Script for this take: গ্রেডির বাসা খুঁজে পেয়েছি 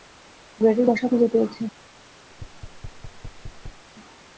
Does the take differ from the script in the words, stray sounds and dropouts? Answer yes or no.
yes